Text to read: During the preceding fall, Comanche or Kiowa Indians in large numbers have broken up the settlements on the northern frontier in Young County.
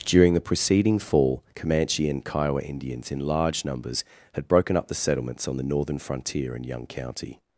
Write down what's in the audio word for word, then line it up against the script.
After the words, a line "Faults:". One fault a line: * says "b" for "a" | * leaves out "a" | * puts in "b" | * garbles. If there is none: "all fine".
During the preceding fall, Comanche and Kiowa Indians in large numbers had broken up the settlements on the northern frontier in Young County.
Faults:
* says "and" for "or"
* says "had" for "have"